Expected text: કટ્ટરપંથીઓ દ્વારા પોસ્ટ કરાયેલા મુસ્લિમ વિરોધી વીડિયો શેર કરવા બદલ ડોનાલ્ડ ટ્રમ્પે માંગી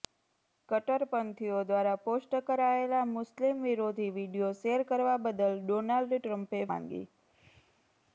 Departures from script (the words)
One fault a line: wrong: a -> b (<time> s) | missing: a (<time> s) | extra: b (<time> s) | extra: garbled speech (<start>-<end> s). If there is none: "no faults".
no faults